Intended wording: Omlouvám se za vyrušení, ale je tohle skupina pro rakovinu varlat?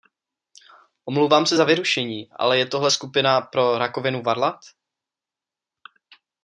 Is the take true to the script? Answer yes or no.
yes